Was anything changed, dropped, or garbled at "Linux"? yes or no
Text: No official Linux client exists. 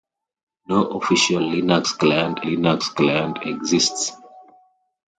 no